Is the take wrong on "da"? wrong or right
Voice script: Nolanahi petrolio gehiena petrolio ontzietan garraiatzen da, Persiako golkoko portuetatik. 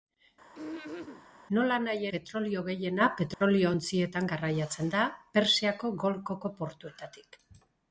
right